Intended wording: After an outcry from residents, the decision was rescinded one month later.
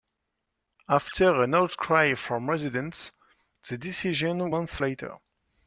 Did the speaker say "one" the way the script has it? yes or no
no